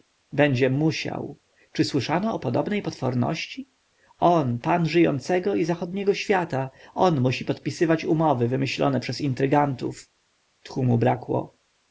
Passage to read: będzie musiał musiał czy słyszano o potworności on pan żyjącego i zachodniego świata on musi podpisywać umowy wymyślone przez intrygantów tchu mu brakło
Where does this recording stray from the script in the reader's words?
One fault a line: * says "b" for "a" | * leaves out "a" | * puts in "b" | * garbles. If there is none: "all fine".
* leaves out "musiał"
* puts in "podobnej"